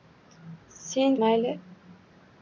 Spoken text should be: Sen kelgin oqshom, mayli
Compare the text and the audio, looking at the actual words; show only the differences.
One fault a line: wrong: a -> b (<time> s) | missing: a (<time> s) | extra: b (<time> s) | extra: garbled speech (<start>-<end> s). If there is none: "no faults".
missing: kelgin oqshom (1.2 s)